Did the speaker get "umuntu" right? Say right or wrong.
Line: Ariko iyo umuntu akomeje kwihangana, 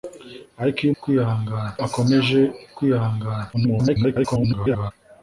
wrong